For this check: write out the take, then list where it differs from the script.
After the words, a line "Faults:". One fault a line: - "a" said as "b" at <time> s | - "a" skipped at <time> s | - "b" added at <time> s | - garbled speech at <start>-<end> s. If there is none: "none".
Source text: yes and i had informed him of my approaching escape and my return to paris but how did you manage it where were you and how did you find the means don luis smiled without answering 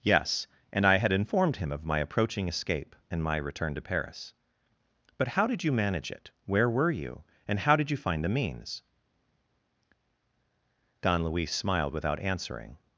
yes and i had informed him of my approaching escape and my return to paris but how did you manage it where were you and how did you find the means don luis smiled without answering
Faults:
none